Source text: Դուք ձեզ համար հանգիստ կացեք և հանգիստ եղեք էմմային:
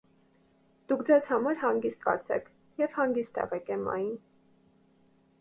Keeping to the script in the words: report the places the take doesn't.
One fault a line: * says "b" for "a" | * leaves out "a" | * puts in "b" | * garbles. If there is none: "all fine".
all fine